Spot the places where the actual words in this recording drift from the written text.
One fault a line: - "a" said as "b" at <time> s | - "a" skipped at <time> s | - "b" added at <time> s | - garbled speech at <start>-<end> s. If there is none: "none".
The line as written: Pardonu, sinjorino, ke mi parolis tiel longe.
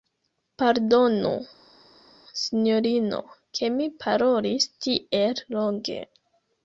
none